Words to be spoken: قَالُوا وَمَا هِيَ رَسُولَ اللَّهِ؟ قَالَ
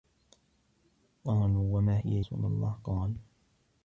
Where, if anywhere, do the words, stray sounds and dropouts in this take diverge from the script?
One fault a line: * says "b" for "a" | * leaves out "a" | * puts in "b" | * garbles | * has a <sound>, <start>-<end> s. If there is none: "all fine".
all fine